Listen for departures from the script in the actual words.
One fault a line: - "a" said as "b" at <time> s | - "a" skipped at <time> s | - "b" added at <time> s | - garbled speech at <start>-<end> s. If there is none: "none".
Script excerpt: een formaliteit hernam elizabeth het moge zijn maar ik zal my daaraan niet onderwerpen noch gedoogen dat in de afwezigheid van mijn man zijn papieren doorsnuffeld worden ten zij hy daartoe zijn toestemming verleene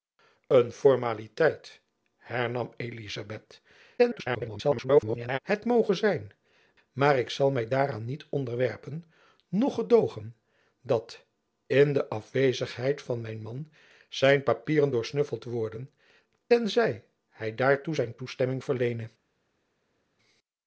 - garbled speech at 4.0-5.4 s